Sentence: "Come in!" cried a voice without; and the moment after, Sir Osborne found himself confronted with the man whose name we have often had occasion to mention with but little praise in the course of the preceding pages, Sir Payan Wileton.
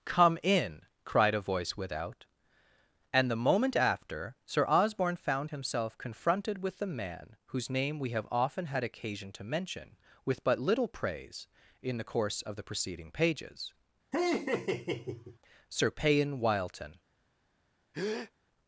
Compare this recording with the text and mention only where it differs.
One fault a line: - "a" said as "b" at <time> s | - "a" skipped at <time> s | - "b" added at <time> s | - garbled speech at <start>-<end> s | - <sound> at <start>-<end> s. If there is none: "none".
- laugh at 14.1-15.4 s
- breath at 17.9-18.3 s